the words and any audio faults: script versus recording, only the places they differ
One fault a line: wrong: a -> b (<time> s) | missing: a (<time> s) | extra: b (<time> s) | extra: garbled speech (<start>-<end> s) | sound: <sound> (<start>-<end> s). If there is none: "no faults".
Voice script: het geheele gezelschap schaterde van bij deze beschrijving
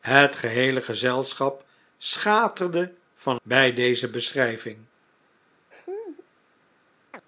sound: laugh (5.7-6.3 s)
sound: chirp (7.1-7.2 s)